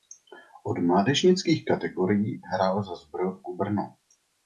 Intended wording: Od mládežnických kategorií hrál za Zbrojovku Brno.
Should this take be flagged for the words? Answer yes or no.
no